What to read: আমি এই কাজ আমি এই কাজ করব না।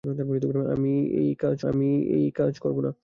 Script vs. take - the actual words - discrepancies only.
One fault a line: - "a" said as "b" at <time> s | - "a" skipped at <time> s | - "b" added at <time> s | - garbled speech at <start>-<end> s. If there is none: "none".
none